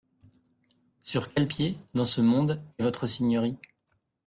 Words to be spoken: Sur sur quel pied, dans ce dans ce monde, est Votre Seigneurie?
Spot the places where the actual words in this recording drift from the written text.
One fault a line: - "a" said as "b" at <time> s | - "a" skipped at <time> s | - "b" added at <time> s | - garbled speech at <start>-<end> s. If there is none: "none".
- "sur" skipped at 1.3 s
- "dans ce" skipped at 2.2 s